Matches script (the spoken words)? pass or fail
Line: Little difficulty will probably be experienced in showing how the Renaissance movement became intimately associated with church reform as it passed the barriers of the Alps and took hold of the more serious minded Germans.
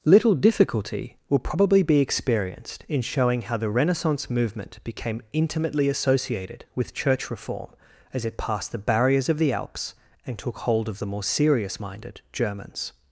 pass